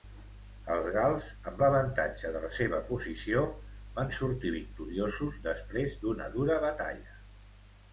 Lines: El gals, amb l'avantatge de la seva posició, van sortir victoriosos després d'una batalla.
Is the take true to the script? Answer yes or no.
no